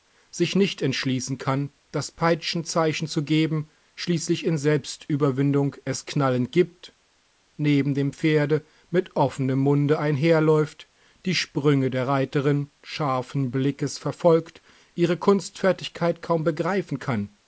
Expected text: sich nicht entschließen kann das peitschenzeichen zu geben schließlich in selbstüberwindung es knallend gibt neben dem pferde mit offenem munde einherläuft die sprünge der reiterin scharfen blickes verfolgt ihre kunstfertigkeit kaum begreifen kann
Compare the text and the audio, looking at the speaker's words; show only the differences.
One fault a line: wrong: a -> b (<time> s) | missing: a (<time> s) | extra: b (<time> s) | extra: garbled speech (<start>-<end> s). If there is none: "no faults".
no faults